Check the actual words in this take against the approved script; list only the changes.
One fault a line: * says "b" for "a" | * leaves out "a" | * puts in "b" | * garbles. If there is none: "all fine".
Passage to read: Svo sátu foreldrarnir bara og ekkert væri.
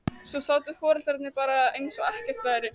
* puts in "eins"